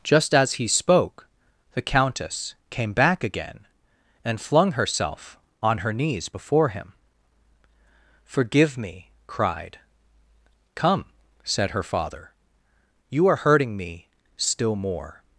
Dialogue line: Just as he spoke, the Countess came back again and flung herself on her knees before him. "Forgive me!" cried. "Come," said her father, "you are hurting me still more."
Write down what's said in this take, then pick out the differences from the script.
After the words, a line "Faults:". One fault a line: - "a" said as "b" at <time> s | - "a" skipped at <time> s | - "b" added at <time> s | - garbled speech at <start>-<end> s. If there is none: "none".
Just as he spoke, the Countess came back again and flung herself on her knees before him. "Forgive me!" cried. "Come," said her father, "you are hurting me still more."
Faults:
none